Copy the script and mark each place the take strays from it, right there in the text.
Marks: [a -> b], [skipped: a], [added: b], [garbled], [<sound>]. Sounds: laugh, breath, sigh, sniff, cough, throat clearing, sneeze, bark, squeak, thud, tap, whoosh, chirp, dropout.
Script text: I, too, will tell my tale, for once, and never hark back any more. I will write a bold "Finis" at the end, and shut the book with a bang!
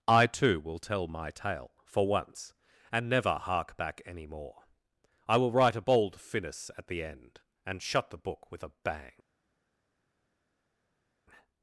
I, too, will tell my tale, for once, and never hark back any more. I will write a bold "Finis" at the end, and shut the book with a bang!